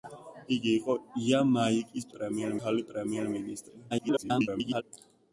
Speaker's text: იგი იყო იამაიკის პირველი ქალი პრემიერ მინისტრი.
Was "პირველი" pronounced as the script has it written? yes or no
no